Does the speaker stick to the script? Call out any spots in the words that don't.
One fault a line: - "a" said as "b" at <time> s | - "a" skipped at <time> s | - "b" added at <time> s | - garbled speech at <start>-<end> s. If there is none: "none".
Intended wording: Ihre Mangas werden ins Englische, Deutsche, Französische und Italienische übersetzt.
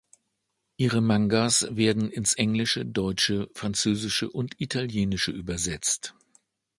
none